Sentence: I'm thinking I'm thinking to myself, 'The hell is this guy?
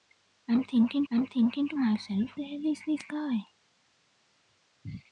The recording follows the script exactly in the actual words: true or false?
true